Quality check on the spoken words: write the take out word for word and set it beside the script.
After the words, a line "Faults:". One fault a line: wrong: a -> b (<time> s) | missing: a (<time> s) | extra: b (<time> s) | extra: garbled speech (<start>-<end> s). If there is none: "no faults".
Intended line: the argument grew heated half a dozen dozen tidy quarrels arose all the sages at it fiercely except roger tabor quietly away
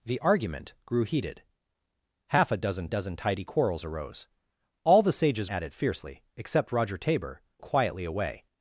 the argument grew heated half a dozen dozen tidy quarrels arose all the sages at it fiercely except roger tabor quietly away
Faults:
no faults